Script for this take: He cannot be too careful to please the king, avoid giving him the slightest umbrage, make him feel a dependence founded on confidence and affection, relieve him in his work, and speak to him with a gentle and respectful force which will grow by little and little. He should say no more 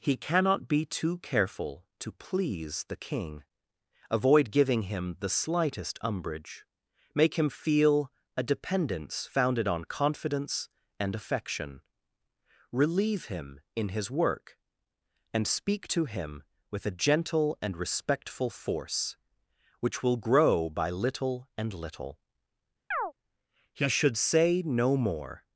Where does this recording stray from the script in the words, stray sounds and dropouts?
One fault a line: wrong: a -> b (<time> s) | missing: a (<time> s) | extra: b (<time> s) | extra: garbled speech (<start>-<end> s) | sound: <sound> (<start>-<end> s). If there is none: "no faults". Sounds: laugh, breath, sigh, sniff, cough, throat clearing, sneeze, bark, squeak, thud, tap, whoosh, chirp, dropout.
sound: chirp (22.9-23.1 s)